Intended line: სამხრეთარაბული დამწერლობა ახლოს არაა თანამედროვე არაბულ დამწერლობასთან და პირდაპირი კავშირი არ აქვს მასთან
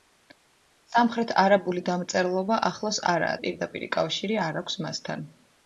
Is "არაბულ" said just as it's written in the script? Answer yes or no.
no